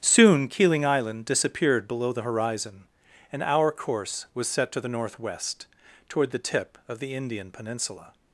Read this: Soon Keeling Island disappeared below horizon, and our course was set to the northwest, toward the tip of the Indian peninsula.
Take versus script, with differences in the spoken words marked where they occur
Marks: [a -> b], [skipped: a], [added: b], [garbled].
Soon Keeling Island disappeared below [added: the] horizon, and our course was set to the northwest, toward the tip of the Indian peninsula.